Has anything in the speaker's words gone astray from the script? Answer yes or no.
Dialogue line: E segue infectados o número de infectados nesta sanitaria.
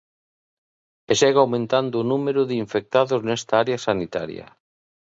yes